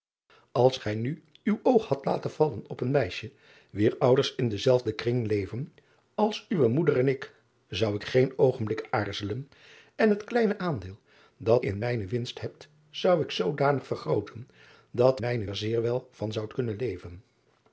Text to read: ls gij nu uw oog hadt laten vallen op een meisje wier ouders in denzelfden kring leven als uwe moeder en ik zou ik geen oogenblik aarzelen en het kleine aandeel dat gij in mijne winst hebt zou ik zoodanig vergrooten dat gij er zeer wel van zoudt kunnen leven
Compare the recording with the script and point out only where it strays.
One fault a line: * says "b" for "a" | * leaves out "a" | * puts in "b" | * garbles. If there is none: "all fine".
* leaves out "gij"
* says "mijne" for "gij"